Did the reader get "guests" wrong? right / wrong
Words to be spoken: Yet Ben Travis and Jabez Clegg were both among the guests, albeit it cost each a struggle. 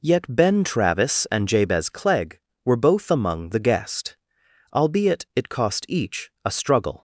wrong